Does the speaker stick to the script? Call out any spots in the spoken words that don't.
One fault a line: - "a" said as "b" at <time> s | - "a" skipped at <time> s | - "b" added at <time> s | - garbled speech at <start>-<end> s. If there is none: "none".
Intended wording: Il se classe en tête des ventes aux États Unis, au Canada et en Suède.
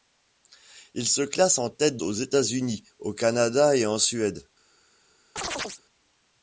- "des ventes" skipped at 2.0 s